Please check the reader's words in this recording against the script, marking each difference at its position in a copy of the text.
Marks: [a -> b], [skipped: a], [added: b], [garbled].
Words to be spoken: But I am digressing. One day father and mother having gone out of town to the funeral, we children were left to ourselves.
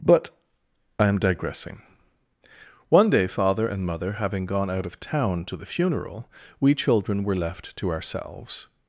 But I am digressing. One day father and mother having gone out of town to the funeral, we children were left to ourselves.